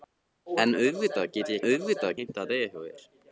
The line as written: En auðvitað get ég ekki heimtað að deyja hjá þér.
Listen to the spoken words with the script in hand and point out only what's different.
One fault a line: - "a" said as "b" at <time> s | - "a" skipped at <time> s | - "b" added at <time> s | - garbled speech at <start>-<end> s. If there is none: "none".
- "ekki" said as "auðvitað" at 1.7 s